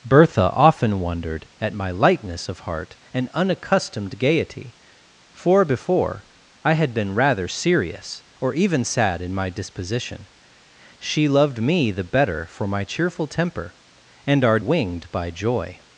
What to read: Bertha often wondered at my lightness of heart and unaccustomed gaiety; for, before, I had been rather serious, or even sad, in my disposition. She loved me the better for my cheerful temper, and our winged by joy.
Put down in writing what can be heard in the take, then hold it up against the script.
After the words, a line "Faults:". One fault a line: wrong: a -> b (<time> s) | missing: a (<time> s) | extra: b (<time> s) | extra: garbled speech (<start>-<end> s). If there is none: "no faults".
Bertha often wondered at my lightness of heart and unaccustomed gaiety; for, before, I had been rather serious, or even sad, in my disposition. She loved me the better for my cheerful temper, and our winged by joy.
Faults:
no faults